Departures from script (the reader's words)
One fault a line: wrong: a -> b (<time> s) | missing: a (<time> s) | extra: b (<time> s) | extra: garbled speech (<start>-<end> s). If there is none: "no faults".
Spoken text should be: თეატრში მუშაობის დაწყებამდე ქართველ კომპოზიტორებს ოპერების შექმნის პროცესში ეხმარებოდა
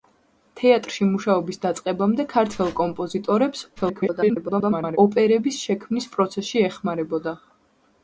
extra: garbled speech (3.8-5.0 s)